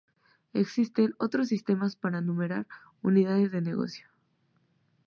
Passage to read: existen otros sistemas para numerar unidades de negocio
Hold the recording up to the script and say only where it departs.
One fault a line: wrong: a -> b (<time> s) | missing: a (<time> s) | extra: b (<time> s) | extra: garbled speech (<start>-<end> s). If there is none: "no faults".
no faults